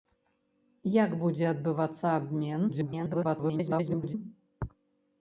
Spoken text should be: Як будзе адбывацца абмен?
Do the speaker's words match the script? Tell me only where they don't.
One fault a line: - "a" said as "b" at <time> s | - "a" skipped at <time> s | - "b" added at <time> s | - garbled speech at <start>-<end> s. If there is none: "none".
- garbled speech at 2.7-4.1 s